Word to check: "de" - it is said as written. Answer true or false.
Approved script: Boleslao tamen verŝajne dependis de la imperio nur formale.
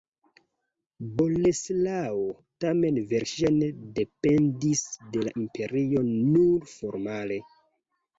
true